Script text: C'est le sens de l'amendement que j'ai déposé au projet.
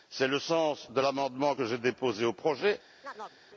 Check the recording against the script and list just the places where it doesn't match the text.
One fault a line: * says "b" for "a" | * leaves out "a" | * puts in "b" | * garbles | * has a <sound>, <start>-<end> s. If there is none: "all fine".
* has a chirp, 3.0-3.4 s